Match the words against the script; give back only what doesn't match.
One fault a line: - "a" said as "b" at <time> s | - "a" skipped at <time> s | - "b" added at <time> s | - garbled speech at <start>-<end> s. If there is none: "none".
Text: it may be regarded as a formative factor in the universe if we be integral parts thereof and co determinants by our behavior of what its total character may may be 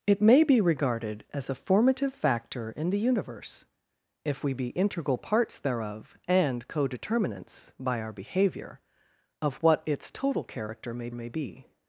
none